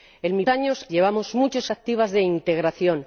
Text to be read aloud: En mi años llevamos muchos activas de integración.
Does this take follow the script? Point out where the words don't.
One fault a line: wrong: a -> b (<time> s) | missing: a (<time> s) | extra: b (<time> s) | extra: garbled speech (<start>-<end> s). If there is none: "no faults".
no faults